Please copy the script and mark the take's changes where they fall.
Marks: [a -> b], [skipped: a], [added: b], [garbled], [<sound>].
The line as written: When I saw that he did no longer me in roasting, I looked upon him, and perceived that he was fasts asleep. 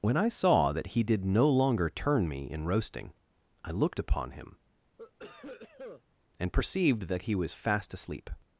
When I saw that he did no longer [added: turn] me in roasting, I looked upon him, [cough] and perceived that he was [fasts -> fast] asleep.